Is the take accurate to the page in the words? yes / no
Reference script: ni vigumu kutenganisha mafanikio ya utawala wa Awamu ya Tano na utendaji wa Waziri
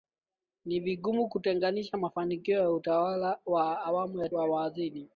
no